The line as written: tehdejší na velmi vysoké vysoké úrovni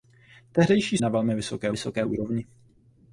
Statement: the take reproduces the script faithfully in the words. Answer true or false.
true